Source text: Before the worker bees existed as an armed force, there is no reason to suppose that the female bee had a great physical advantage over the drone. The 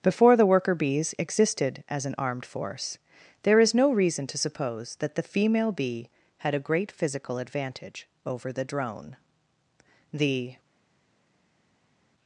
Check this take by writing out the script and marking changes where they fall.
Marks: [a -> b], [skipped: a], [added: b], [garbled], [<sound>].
Before the worker bees existed as an armed force, there is no reason to suppose that the female bee had a great physical advantage over the drone. The